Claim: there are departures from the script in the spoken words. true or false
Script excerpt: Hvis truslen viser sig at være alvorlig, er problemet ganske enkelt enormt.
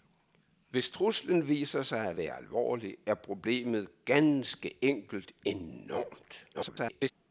true